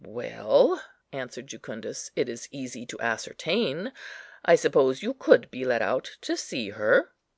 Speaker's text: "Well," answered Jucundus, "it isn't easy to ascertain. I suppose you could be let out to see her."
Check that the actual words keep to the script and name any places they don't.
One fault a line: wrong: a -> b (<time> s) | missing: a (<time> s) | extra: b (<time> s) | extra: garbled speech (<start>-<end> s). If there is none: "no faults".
wrong: isn't -> is (2.3 s)